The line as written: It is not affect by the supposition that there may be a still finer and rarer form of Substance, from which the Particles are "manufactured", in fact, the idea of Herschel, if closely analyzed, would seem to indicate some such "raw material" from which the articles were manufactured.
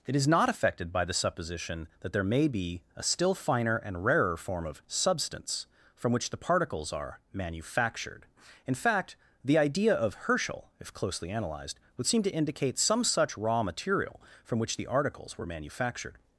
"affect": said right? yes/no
no